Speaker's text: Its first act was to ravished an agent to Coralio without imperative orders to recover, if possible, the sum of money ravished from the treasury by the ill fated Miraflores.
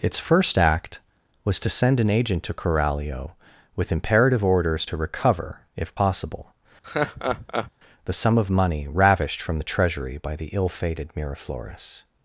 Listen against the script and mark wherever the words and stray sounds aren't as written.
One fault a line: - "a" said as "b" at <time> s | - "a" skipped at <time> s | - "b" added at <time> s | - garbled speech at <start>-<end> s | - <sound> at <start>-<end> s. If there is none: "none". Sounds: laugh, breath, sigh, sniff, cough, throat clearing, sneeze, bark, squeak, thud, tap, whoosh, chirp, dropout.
- "ravished" said as "send" at 1.7 s
- "without" said as "with" at 3.8 s
- laugh at 6.8-7.7 s